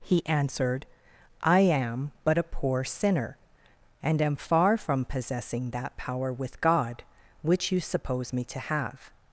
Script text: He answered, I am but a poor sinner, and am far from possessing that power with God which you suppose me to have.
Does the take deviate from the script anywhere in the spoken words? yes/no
no